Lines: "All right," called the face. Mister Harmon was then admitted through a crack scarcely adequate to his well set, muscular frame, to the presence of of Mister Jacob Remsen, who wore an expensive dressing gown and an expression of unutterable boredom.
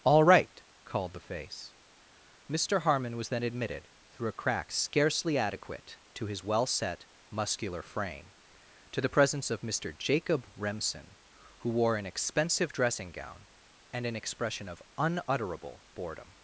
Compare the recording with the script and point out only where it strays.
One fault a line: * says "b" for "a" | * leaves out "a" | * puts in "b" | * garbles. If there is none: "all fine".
* leaves out "of"